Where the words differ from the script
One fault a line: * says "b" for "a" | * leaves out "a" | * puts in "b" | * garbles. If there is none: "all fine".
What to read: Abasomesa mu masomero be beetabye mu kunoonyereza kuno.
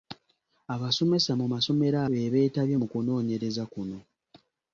all fine